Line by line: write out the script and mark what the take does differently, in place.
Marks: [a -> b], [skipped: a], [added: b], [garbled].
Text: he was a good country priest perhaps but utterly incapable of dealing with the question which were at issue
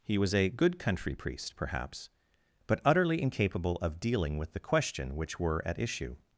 he was a good country priest perhaps but utterly incapable of dealing with the question which were at issue